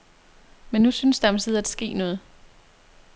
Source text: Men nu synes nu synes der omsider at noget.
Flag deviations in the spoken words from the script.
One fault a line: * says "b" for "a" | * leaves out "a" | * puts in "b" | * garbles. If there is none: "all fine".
* leaves out "nu synes"
* puts in "ske"